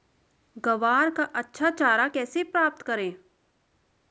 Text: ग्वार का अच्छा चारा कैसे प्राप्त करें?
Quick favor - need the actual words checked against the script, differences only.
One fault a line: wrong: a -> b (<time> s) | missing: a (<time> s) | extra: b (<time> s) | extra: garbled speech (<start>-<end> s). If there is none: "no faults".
no faults